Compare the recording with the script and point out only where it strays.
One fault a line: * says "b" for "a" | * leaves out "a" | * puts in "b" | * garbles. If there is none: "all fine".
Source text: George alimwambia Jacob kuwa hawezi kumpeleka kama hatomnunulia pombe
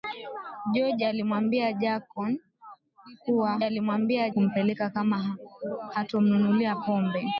* says "alimwambia" for "hawezi"